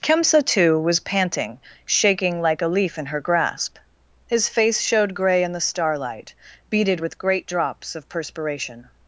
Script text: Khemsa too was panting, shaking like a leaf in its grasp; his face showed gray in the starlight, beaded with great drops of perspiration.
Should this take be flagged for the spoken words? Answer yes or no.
yes